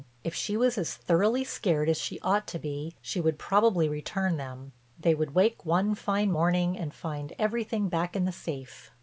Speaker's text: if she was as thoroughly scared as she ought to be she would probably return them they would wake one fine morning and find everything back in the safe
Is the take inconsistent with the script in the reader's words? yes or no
no